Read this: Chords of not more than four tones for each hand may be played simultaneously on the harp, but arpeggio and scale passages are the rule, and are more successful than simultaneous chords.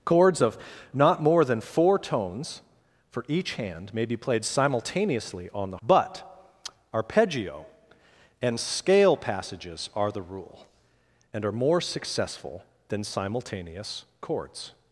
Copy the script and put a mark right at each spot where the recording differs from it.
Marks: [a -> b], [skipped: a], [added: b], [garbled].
Chords of not more than four tones for each hand may be played simultaneously on the [skipped: harp,] but arpeggio and scale passages are the rule, and are more successful than simultaneous chords.